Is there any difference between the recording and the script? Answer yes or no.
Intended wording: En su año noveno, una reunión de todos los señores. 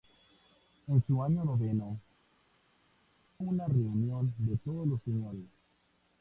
no